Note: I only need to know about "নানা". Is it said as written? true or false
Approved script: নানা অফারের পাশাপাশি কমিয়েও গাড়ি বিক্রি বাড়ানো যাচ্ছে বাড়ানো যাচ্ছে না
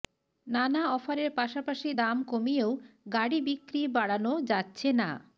true